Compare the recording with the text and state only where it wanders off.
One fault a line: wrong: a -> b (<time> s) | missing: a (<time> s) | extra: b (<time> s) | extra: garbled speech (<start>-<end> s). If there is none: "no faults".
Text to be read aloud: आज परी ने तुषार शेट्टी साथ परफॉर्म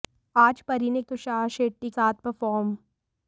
no faults